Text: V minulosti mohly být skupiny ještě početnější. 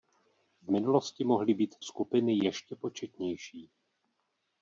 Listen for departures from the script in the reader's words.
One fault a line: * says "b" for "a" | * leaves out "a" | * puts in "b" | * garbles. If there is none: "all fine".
all fine